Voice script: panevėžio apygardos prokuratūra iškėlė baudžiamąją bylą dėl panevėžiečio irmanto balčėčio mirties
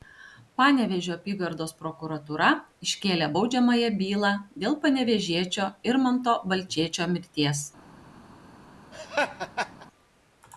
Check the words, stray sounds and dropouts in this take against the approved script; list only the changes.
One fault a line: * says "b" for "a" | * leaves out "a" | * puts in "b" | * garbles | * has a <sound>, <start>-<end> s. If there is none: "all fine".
* has a laugh, 8.9-9.9 s